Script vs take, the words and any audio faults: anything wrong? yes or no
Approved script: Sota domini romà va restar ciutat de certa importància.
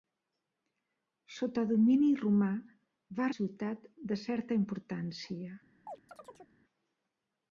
yes